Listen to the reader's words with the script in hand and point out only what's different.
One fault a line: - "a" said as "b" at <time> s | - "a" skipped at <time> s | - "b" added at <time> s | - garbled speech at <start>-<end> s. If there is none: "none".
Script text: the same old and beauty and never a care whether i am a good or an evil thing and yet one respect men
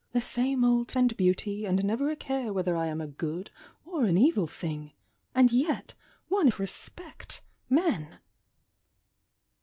none